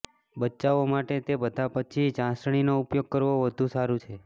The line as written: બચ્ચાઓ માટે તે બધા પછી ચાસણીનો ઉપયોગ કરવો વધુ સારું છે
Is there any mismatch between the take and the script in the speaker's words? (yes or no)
no